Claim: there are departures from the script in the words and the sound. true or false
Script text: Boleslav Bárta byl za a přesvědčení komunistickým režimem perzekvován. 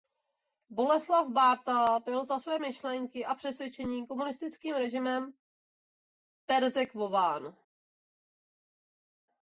true